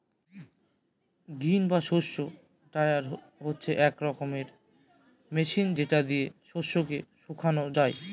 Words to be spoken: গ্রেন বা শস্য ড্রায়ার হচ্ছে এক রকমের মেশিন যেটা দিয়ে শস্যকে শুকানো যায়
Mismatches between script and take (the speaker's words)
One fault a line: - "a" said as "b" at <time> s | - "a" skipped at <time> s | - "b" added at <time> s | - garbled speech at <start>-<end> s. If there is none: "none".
none